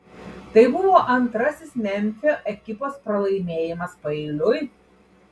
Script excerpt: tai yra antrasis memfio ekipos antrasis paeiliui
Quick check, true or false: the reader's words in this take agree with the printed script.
false